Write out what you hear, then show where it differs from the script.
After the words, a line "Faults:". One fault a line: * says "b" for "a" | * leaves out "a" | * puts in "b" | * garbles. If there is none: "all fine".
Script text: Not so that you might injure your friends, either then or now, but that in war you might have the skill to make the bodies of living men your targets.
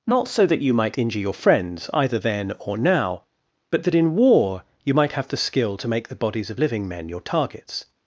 Not so that you might injure your friends, either then or now, but that in war you might have the skill to make the bodies of living men your targets.
Faults:
all fine